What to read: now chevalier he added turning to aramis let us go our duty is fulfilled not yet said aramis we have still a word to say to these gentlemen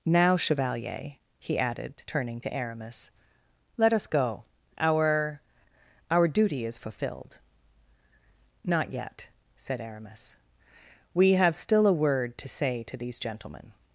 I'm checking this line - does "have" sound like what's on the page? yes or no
yes